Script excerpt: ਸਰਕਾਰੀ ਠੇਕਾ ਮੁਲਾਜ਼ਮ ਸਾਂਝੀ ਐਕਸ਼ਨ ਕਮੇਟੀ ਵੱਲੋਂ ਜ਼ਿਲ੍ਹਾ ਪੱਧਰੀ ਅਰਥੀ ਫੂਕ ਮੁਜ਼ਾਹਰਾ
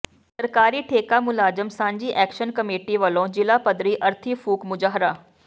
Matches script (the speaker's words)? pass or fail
pass